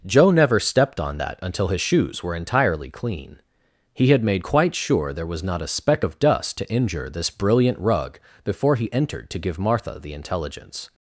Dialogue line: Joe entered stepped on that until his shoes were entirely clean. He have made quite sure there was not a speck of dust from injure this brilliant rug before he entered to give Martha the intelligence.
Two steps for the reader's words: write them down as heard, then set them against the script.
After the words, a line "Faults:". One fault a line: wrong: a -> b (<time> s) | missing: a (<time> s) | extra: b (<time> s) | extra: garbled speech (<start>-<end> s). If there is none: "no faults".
Joe never stepped on that until his shoes were entirely clean. He had made quite sure there was not a speck of dust to injure this brilliant rug before he entered to give Martha the intelligence.
Faults:
wrong: entered -> never (0.3 s)
wrong: have -> had (4.1 s)
wrong: from -> to (6.6 s)